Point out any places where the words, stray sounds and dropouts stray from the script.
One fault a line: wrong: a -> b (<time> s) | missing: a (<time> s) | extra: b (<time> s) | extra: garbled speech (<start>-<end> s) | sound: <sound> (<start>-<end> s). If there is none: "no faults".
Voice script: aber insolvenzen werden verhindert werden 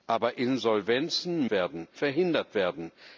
no faults